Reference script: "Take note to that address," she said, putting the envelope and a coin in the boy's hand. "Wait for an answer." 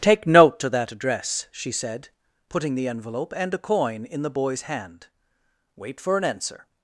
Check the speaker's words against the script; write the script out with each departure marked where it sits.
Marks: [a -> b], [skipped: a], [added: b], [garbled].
"Take note to that address," she said, putting the envelope and a coin in the boy's hand. "Wait for an answer."